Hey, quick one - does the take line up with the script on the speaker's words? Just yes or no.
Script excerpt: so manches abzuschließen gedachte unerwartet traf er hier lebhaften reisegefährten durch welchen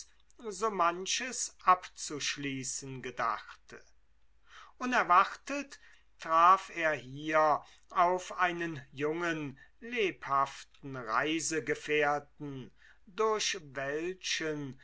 no